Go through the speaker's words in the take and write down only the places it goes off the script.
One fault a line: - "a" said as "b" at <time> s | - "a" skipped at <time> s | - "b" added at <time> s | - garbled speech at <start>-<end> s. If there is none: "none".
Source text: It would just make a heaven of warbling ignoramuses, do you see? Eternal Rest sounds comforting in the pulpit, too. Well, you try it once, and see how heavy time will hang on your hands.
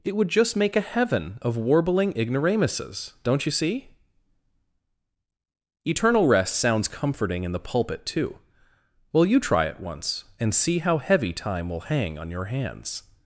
- "do" said as "don't" at 3.2 s